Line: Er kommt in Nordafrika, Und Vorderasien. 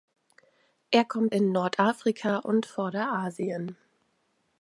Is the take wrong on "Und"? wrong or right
right